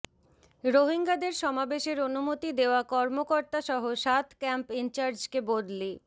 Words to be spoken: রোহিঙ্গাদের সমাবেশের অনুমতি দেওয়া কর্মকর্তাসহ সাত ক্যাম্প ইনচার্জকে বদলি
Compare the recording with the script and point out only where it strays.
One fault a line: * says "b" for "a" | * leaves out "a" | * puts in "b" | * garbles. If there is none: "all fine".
all fine